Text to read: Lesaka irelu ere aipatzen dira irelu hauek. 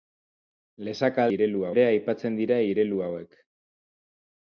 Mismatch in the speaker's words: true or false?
false